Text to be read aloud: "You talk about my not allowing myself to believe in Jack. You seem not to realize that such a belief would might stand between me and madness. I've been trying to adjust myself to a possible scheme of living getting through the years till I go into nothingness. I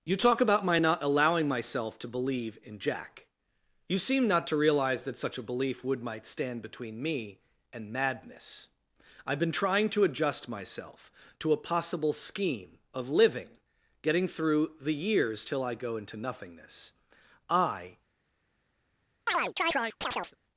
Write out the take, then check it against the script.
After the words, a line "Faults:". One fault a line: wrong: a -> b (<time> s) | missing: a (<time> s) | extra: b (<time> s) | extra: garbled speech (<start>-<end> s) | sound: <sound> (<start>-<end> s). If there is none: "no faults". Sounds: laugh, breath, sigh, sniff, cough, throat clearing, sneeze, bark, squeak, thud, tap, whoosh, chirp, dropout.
"You talk about my not allowing myself to believe in Jack. You seem not to realize that such a belief would might stand between me and madness. I've been trying to adjust myself to a possible scheme of living getting through the years till I go into nothingness. I
Faults:
sound: chirp (19.3-20.4 s)